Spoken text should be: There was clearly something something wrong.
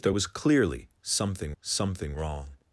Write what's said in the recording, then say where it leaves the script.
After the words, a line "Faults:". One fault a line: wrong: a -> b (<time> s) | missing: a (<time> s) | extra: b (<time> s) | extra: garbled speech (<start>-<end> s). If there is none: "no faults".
There was clearly something something wrong.
Faults:
no faults